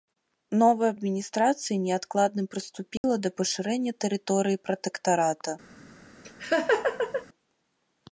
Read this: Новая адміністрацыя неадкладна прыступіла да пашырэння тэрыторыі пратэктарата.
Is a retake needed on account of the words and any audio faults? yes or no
yes